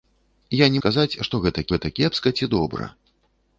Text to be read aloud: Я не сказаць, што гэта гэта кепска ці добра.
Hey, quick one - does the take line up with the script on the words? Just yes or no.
yes